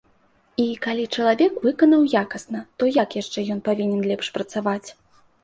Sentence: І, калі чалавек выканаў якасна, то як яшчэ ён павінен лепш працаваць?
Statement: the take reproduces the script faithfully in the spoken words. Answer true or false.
true